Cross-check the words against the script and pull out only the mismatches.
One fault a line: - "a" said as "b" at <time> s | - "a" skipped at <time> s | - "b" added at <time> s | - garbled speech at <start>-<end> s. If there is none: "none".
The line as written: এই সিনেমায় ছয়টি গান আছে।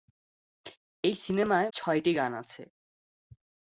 none